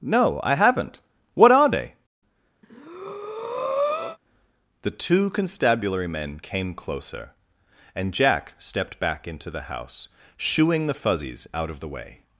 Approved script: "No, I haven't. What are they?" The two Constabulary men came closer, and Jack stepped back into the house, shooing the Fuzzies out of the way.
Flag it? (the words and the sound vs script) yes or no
yes